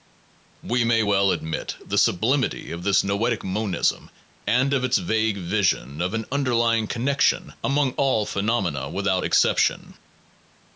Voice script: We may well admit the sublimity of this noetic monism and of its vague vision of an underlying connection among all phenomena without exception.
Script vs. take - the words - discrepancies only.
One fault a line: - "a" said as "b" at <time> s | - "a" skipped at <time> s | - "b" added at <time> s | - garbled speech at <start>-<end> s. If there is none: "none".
none